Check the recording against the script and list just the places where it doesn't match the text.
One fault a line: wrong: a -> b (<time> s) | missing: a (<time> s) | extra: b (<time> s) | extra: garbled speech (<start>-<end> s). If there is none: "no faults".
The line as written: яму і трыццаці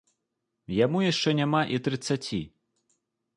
extra: яшчэ няма (1.1 s)